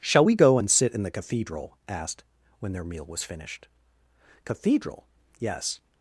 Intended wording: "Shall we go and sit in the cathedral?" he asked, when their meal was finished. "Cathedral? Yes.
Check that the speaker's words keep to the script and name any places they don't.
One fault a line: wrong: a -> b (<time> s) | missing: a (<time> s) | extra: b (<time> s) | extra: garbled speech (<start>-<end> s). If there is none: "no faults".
missing: he (1.8 s)